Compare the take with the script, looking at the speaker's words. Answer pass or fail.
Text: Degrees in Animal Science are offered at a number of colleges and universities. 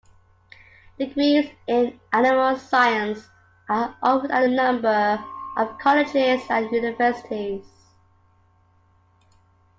pass